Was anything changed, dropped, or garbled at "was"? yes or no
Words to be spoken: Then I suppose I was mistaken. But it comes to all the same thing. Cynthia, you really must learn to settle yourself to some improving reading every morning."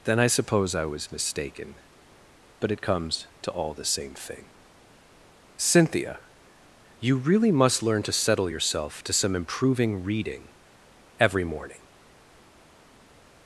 no